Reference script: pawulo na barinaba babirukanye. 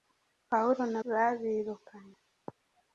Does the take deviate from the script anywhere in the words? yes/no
yes